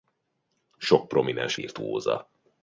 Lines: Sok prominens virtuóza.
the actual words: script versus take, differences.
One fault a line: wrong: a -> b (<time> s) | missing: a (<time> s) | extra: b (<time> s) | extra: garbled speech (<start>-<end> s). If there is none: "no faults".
no faults